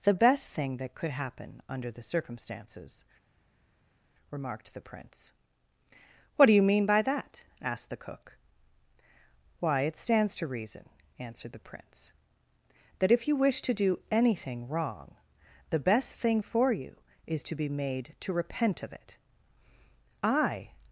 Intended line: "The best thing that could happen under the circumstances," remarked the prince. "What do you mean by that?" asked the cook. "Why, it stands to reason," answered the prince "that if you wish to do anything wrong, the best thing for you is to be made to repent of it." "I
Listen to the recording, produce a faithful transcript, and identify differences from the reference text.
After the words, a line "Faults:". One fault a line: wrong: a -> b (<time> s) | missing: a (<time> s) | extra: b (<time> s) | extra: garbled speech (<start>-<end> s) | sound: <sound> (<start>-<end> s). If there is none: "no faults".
"The best thing that could happen under the circumstances," remarked the prince. "What do you mean by that?" asked the cook. "Why, it stands to reason," answered the prince "that if you wish to do anything wrong, the best thing for you is to be made to repent of it." "I
Faults:
no faults